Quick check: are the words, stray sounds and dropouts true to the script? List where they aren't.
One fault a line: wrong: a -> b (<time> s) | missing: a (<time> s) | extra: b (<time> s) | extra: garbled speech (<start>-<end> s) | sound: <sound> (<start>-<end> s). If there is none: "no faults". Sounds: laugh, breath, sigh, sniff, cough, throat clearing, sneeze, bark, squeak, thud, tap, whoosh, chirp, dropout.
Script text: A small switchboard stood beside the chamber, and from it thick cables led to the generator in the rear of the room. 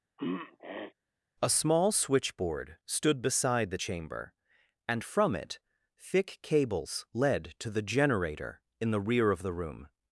sound: throat clearing (0.2-0.9 s)